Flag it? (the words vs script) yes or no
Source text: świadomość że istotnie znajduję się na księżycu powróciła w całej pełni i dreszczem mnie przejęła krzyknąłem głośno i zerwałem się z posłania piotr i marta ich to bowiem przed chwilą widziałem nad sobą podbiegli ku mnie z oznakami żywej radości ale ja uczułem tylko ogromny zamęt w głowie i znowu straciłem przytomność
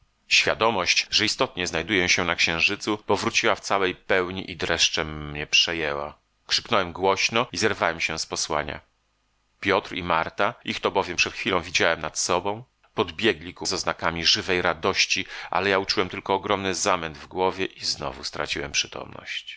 yes